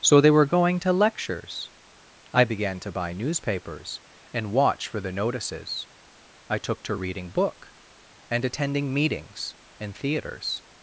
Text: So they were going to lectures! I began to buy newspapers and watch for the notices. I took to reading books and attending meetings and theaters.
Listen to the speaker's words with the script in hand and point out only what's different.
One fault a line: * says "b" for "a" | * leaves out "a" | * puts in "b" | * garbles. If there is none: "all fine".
* says "book" for "books"